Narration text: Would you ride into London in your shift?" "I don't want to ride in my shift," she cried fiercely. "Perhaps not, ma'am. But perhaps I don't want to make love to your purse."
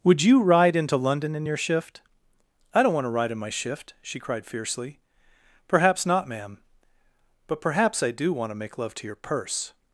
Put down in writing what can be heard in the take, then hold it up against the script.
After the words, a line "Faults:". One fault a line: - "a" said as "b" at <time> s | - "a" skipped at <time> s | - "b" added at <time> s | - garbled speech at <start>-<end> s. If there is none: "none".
Would you ride into London in your shift?" "I don't want to ride in my shift," she cried fiercely. "Perhaps not, ma'am. But perhaps I do want to make love to your purse."
Faults:
- "don't" said as "do" at 8.1 s